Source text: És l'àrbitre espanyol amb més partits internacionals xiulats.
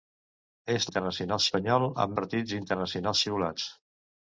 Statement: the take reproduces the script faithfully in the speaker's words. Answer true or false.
false